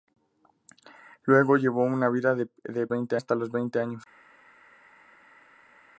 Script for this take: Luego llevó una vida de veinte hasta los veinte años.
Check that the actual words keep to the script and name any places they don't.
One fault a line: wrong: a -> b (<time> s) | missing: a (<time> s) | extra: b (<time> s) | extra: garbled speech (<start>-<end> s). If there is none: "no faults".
no faults